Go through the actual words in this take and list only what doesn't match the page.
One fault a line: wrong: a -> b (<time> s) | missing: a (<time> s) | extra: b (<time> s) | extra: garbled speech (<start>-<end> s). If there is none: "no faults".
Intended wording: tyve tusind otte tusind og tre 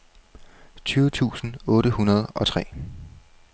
wrong: tusind -> hundrede (1.9 s)